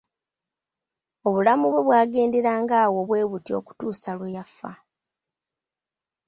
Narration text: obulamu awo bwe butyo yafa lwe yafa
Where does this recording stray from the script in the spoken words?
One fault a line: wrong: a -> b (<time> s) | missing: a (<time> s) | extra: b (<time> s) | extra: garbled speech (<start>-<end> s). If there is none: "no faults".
extra: bwe bwagenderanga (1.7 s)
wrong: yafa -> okutuusa (3.6 s)